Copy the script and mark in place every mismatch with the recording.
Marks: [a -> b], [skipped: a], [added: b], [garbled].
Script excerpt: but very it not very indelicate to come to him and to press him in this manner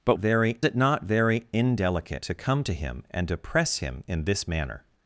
but very it not very indelicate to come to him and to press him in this manner